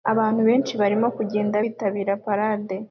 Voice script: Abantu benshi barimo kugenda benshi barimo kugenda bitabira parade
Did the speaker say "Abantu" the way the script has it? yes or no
yes